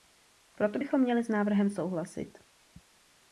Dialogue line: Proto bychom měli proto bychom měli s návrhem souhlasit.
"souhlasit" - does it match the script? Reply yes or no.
yes